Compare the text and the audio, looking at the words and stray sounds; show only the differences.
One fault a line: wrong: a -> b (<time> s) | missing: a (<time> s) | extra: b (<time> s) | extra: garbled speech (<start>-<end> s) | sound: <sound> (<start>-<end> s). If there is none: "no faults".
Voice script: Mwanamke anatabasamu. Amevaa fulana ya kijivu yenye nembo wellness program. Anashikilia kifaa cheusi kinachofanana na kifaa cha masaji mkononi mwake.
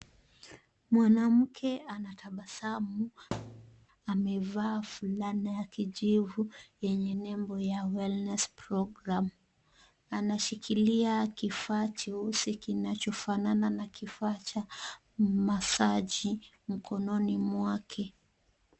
sound: thud (3.3-3.9 s)
extra: ya (7.6 s)